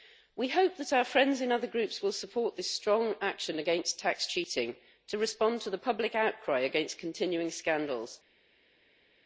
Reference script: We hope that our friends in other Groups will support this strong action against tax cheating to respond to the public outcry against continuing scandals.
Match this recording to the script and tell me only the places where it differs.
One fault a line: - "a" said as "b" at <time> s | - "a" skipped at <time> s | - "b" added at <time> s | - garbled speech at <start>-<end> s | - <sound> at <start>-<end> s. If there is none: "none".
none